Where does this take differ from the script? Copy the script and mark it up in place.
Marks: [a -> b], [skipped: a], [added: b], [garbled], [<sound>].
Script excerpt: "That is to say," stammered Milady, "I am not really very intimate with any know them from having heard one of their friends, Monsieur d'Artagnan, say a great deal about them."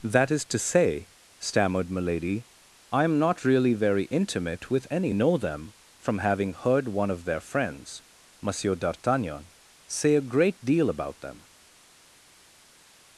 "That is to say," stammered Milady, "I am not really very intimate with any know them from having heard one of their friends, Monsieur d'Artagnan, say a great deal about them."